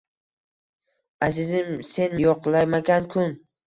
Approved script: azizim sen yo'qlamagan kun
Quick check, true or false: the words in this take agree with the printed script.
true